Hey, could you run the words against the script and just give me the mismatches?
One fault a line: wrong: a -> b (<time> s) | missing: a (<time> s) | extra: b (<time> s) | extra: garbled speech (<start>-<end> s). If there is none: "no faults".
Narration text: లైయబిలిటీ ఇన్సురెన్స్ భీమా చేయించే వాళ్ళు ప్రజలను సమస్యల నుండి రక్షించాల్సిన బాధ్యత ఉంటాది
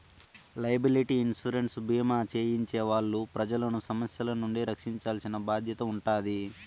no faults